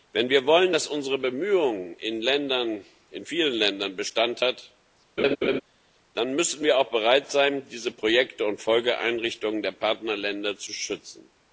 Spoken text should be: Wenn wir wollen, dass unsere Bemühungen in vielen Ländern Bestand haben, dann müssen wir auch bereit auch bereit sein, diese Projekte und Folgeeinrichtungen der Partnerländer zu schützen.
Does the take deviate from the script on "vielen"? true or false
false